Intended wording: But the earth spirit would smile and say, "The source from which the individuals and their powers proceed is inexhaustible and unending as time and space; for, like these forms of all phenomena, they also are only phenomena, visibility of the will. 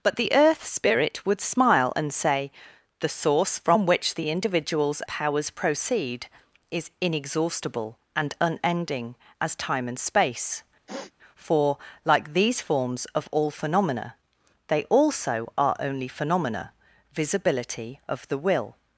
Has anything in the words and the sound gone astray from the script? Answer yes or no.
yes